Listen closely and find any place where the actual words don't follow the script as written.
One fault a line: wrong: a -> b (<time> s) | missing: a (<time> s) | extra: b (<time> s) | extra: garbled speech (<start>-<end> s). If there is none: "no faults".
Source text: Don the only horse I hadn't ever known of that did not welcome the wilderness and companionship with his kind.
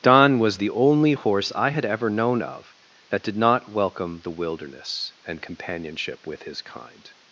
extra: was (0.4 s)
wrong: hadn't -> had (1.7 s)